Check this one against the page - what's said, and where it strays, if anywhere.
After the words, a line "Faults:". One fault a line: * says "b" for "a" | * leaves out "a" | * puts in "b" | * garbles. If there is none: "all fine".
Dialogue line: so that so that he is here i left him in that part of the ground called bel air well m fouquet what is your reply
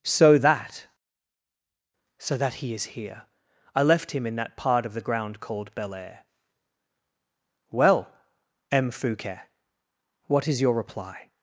so that so that he is here i left him in that part of the ground called bel air well m fouquet what is your reply
Faults:
all fine